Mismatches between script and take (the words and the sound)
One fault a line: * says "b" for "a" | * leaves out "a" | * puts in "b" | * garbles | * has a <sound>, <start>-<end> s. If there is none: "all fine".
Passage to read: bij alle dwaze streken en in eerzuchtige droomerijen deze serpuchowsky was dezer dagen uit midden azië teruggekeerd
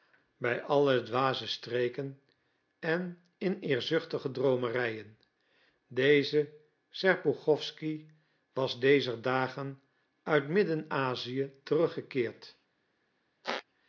* has a squeak, 13.4-13.6 s